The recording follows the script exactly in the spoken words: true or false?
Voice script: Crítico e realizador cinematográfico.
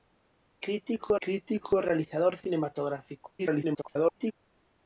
false